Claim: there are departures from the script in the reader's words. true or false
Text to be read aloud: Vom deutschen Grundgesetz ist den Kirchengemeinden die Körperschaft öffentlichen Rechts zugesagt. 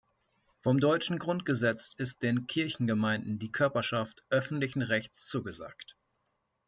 false